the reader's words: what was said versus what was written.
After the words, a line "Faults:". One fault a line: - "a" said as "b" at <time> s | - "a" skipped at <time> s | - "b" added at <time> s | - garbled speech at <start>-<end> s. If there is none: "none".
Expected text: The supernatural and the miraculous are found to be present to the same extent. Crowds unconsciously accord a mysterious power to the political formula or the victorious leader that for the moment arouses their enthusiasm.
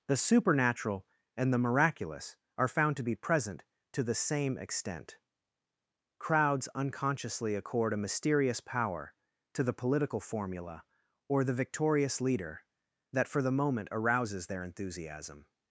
The supernatural and the miraculous are found to be present to the same extent. Crowds unconsciously accord a mysterious power to the political formula or the victorious leader that for the moment arouses their enthusiasm.
Faults:
none